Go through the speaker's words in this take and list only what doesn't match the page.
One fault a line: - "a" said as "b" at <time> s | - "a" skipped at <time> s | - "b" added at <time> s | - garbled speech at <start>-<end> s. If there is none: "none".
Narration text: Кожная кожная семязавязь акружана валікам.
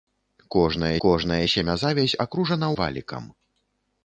none